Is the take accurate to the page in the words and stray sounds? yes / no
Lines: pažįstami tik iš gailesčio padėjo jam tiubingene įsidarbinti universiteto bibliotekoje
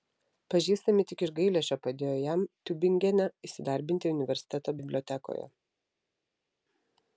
yes